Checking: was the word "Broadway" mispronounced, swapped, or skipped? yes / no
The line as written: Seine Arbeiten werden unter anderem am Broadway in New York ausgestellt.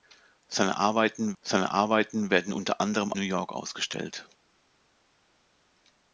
yes